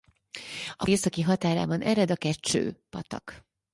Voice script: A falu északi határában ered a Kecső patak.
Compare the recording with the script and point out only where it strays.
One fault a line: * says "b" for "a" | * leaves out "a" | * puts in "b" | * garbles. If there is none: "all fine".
* leaves out "falu"